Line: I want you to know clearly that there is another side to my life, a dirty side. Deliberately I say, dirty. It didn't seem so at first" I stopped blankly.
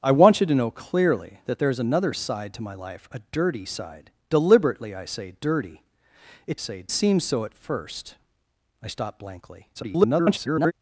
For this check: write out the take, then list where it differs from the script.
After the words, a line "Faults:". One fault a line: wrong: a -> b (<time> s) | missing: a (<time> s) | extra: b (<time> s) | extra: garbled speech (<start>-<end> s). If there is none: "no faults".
I want you to know clearly that there is another side to my life, a dirty side. Deliberately I say, dirty. It say seem so at first" I stopped blankly. [garbled]
Faults:
wrong: didn't -> say (6.6 s)
extra: garbled speech (9.7-10.7 s)